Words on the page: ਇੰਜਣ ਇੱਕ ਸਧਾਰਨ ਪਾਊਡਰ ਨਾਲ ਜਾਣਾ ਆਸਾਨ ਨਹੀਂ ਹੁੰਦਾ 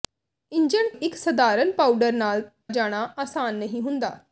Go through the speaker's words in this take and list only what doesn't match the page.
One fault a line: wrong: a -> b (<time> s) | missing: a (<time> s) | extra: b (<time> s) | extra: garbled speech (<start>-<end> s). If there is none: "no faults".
no faults